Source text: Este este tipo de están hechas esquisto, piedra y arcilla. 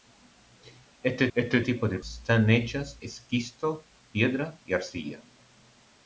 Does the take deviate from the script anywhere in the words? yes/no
no